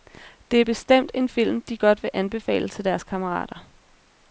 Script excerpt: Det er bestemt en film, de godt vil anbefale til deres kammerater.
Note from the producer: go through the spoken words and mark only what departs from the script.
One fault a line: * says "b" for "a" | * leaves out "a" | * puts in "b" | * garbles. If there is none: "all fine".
all fine